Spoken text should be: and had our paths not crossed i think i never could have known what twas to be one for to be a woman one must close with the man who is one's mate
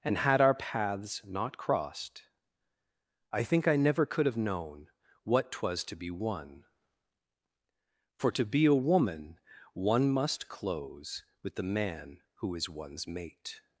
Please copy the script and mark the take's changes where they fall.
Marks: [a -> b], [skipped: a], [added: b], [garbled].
and had our paths not crossed i think i never could have known what twas to be one for to be a woman one must close with the man who is one's mate